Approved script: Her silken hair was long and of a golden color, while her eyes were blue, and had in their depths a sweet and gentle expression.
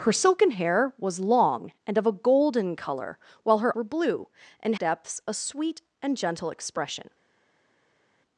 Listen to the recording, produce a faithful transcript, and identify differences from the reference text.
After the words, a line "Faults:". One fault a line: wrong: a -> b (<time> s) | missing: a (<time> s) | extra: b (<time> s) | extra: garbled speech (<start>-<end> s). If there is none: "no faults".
Her silken hair was long and of a golden color, while her were blue, and depths a sweet and gentle expression.
Faults:
missing: eyes (3.8 s)
missing: had in their (4.8 s)